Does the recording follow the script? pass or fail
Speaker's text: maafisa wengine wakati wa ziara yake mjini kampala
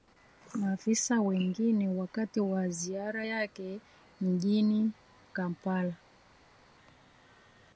pass